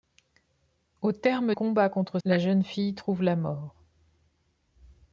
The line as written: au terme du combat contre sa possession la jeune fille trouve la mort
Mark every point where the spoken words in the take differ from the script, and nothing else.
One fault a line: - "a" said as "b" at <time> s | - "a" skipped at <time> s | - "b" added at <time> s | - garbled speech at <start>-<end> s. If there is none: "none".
- "du" skipped at 1.5 s
- "sa possession" skipped at 2.2 s